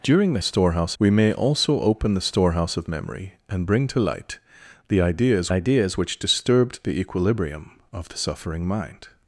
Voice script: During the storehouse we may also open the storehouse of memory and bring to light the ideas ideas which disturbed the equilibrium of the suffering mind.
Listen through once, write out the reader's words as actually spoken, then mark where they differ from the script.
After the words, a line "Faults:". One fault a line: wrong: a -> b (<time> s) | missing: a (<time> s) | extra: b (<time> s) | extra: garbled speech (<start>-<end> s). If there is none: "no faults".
During the storehouse we may also open the storehouse of memory and bring to light the ideas ideas which disturbed the equilibrium of the suffering mind.
Faults:
no faults